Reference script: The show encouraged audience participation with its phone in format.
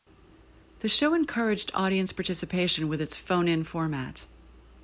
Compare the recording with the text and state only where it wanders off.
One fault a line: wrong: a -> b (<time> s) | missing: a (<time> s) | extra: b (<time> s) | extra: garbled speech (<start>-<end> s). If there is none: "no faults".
no faults